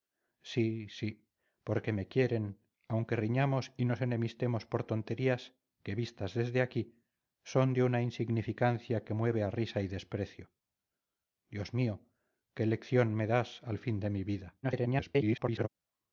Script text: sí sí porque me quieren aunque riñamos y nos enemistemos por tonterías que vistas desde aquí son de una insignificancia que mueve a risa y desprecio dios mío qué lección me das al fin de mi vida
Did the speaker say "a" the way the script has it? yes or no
yes